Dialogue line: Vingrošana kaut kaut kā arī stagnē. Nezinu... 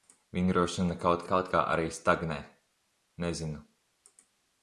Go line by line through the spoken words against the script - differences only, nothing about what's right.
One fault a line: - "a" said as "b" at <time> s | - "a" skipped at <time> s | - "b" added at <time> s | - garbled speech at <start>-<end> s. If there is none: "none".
none